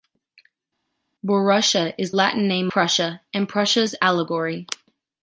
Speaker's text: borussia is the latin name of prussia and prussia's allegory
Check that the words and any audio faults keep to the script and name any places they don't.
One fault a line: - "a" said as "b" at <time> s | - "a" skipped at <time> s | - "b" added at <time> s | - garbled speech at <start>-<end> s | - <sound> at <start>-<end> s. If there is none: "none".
- "the" skipped at 2.1 s
- "of" skipped at 2.7 s